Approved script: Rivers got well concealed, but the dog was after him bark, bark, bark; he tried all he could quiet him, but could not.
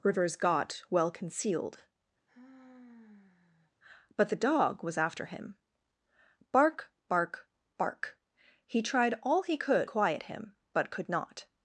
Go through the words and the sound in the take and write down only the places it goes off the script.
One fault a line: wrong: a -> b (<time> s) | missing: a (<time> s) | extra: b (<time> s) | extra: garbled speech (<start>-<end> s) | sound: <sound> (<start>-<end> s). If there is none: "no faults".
sound: sigh (2.3-3.7 s)